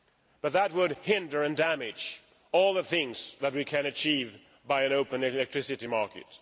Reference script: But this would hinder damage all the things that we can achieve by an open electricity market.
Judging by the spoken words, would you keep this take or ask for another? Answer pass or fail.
fail